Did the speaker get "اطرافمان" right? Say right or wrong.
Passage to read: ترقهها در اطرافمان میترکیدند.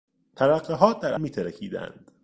wrong